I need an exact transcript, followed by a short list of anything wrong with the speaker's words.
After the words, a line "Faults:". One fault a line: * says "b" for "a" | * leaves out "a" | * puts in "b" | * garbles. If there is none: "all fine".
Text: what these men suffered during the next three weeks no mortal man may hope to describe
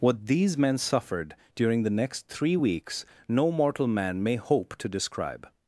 what these men suffered during the next three weeks no mortal man may hope to describe
Faults:
all fine